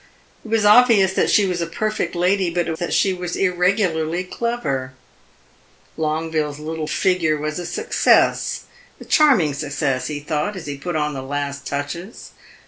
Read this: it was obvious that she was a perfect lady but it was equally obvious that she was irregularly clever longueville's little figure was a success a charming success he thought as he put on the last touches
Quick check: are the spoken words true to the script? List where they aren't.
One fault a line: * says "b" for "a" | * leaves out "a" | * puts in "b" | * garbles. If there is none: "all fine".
* leaves out "was equally obvious"